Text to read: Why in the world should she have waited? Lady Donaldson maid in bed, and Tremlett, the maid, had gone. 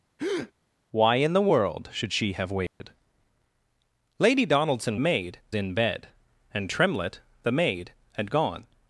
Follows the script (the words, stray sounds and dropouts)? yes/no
no